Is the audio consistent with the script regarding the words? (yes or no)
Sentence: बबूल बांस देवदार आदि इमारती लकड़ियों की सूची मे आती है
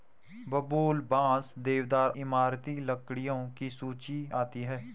no